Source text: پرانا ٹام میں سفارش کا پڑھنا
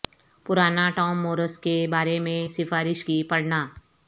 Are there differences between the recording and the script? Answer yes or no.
yes